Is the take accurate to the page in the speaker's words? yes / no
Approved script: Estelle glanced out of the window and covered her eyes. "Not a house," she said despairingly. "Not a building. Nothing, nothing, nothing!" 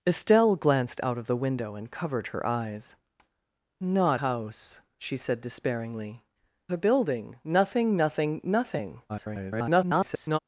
no